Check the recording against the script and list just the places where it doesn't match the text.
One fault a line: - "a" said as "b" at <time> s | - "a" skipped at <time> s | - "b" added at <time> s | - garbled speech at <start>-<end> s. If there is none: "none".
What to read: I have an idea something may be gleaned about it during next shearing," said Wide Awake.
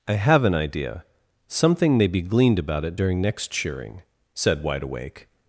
none